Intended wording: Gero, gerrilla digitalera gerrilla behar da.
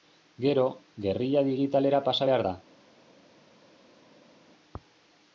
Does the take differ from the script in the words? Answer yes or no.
yes